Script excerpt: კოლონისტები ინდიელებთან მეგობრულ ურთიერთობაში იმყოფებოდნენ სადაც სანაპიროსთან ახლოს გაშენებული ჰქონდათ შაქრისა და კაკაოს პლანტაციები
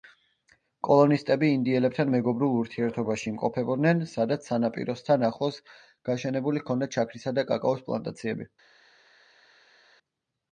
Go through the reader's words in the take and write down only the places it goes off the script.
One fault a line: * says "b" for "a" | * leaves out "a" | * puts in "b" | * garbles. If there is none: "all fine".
all fine